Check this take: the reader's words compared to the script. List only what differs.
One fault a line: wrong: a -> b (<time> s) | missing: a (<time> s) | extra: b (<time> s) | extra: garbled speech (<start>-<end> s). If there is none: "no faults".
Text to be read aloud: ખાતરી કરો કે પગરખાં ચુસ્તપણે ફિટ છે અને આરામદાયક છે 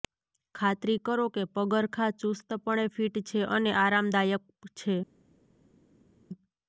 no faults